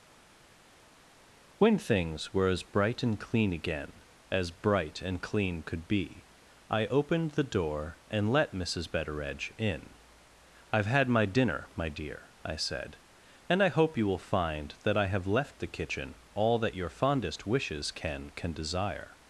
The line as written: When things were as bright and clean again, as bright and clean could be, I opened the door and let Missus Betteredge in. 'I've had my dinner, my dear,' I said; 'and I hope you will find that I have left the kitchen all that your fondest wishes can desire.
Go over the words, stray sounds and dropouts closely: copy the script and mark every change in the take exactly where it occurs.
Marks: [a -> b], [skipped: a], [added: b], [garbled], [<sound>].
When things were as bright and clean again, as bright and clean could be, I opened the door and let Missus Betteredge in. 'I've had my dinner, my dear,' I said; 'and I hope you will find that I have left the kitchen all that your fondest wishes can [added: can] desire.